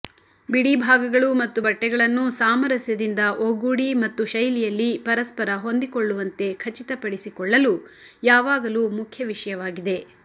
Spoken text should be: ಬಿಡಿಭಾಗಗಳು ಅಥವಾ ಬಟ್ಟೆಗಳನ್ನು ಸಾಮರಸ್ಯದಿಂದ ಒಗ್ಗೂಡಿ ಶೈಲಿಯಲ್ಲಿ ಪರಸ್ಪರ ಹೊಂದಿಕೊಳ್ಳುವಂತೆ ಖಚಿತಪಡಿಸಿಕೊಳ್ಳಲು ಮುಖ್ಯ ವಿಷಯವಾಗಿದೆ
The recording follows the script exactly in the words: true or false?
false